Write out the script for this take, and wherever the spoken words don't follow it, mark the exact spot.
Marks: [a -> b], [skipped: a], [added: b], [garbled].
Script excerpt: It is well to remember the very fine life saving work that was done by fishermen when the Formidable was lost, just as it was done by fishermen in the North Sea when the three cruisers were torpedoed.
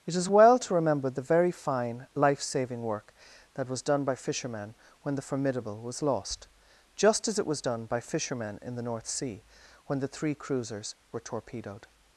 It is well to remember the very fine life saving work that was done by fishermen when the Formidable was lost, just as it was done by fishermen in the North Sea when the three cruisers were torpedoed.